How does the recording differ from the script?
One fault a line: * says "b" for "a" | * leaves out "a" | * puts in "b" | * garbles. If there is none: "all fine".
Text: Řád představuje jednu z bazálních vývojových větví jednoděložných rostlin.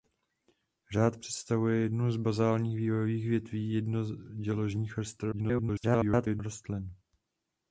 * garbles